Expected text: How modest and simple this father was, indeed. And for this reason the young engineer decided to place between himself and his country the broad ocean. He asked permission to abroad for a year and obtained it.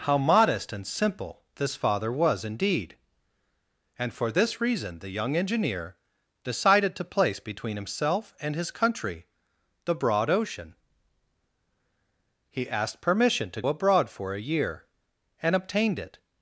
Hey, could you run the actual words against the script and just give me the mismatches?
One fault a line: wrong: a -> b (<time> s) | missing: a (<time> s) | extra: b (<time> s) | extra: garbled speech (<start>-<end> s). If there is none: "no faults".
no faults